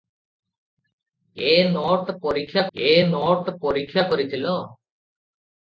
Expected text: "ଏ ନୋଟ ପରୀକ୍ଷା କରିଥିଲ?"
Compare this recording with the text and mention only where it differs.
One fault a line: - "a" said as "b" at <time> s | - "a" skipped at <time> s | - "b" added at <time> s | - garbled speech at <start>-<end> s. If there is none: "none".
- "ଏ ନୋଟ ପରୀକ୍ଷା" added at 2.8 s